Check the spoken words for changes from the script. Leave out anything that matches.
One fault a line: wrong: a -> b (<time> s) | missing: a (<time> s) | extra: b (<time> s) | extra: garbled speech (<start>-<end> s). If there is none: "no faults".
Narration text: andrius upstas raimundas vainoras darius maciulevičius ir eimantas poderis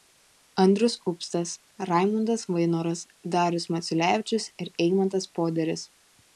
no faults